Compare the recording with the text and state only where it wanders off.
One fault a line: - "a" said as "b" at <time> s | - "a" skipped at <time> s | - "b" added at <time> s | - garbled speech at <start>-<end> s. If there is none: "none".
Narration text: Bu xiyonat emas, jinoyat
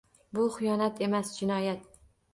none